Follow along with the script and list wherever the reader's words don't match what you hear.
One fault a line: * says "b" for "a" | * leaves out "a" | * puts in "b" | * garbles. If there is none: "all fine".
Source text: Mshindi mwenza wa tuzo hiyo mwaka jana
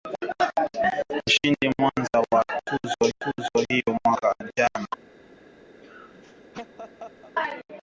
* puts in "tuzo"